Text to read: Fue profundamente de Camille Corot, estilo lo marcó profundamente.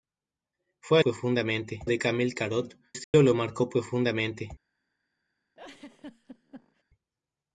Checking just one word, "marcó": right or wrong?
right